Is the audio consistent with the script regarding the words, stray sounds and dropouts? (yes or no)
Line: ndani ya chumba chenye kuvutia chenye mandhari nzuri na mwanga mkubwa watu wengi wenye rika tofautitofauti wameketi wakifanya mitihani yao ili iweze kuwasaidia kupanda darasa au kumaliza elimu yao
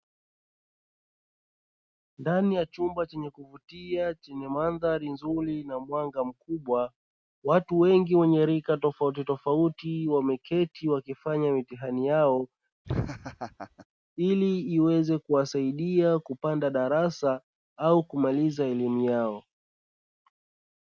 no